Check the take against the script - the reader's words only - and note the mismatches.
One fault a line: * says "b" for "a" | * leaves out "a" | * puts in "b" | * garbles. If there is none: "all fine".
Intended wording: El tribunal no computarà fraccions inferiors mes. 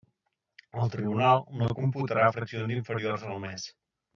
* puts in "al"